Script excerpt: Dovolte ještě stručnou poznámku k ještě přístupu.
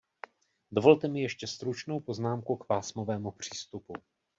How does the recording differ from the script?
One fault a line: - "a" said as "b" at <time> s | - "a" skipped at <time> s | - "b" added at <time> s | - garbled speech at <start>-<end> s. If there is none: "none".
- "mi" added at 1.1 s
- "ještě" said as "pásmovému" at 2.6 s